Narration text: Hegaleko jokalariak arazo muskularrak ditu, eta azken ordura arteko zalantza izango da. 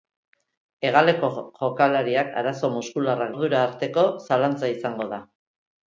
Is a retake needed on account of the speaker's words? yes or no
yes